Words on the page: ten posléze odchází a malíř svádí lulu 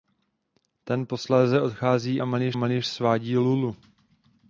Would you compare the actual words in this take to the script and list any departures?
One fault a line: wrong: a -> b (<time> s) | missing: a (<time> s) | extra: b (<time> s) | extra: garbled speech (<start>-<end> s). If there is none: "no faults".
extra: malíř (2.5 s)